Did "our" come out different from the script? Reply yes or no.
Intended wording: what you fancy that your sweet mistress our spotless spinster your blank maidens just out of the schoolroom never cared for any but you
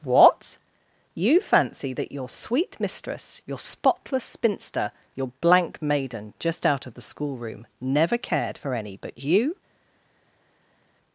yes